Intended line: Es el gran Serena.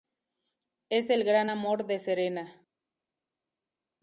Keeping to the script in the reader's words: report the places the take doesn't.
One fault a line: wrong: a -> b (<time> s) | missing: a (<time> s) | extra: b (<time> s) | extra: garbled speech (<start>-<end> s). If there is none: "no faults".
extra: amor de (1.5 s)